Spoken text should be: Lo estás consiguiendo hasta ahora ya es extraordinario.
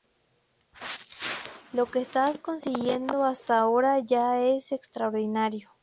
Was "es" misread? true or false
false